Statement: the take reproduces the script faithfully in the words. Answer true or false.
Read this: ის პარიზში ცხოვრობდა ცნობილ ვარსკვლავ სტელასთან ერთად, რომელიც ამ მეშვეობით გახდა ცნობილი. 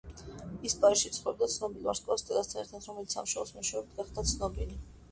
false